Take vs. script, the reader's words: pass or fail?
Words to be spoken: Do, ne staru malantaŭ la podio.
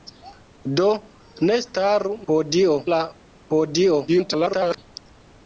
fail